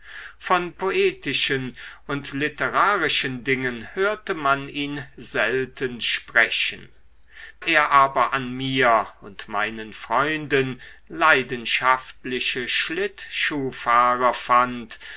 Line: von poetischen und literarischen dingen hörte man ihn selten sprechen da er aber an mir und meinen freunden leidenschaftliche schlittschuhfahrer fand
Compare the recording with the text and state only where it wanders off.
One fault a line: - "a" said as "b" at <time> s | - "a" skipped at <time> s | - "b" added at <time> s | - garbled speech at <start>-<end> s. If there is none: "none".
- "da" skipped at 6.9 s